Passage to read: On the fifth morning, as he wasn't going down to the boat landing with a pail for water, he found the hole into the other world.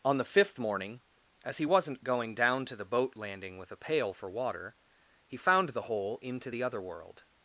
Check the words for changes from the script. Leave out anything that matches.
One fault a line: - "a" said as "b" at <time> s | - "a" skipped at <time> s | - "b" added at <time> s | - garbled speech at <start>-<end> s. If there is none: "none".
none